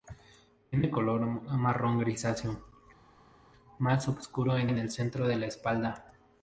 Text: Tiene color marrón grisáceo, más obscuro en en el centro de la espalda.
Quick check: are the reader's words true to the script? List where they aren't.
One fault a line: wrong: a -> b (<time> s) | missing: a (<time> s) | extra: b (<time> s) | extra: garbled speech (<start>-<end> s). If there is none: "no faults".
no faults